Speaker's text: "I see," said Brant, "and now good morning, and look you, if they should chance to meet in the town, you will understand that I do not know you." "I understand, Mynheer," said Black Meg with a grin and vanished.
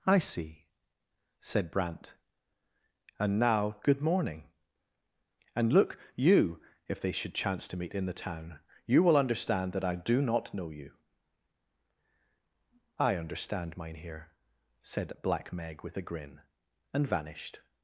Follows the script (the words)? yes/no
yes